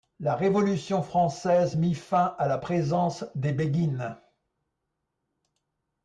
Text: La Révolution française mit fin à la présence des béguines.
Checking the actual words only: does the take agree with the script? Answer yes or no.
yes